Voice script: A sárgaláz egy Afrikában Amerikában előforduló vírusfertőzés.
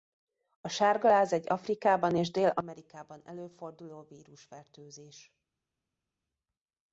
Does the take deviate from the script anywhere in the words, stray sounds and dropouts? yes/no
yes